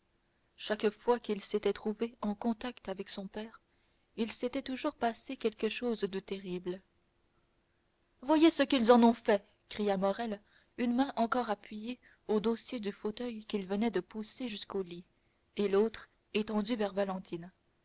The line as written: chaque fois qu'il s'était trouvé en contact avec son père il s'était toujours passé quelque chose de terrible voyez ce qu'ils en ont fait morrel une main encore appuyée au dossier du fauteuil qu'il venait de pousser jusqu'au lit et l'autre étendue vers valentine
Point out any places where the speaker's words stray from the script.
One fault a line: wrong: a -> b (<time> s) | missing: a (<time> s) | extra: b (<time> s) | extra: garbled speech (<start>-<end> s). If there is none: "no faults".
extra: cria (9.7 s)